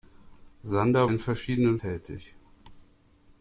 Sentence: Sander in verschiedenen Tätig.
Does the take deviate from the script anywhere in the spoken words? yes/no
no